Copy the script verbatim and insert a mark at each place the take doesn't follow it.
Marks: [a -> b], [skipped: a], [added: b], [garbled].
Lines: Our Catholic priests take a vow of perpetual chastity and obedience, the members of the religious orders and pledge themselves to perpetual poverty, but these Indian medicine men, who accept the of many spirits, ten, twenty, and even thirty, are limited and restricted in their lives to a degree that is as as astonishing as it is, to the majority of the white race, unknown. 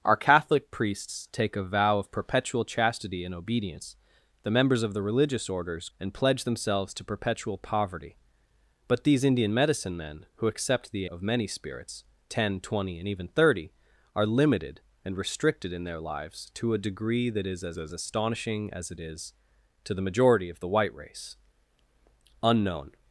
Our Catholic priests take a vow of perpetual chastity and obedience, the members of the religious orders and pledge themselves to perpetual poverty, but these Indian medicine men, who accept the of many spirits, ten, twenty, and even thirty, are limited and restricted in their lives to a degree that is as as astonishing as it is, to the majority of the white race, unknown.